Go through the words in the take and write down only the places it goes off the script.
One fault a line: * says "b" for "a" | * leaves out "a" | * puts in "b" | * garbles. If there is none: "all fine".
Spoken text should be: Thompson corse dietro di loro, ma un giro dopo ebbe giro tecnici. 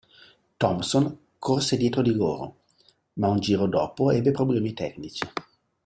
* says "problemi" for "giro"